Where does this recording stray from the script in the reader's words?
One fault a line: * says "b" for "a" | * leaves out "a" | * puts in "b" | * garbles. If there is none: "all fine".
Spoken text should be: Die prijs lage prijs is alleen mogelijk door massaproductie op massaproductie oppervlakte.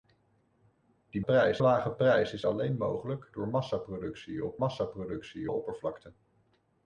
all fine